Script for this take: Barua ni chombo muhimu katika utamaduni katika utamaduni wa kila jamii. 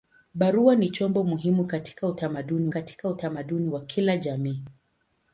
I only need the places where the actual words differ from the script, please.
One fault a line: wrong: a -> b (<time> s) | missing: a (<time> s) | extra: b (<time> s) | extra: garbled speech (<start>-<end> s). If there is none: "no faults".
no faults